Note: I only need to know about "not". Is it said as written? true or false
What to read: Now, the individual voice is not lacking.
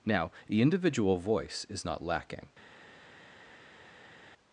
true